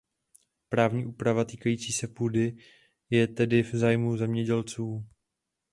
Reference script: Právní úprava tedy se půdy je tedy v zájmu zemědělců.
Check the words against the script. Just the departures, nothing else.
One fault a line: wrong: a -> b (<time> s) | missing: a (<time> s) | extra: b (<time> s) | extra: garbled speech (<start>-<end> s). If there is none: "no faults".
wrong: tedy -> týkající (1.4 s)